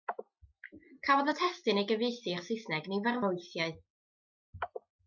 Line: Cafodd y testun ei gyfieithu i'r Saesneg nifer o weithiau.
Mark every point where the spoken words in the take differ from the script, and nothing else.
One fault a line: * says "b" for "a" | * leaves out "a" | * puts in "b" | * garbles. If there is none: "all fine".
all fine